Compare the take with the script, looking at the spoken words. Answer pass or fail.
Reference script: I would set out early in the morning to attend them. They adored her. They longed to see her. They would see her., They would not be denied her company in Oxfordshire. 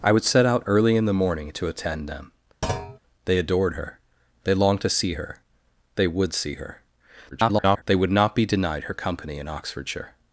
fail